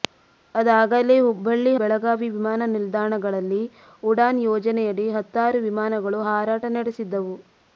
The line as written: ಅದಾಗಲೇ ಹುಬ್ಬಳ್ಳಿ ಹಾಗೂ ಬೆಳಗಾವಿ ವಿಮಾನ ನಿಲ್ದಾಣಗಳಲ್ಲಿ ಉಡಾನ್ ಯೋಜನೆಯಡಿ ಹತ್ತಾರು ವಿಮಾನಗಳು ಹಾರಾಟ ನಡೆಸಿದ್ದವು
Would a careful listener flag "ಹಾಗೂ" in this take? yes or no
yes